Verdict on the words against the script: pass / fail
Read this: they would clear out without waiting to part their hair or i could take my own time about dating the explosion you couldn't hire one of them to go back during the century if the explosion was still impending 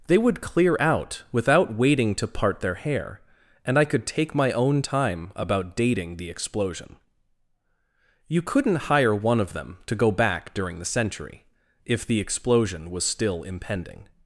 fail